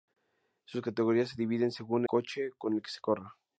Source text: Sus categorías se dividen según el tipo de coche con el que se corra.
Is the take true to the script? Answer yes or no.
no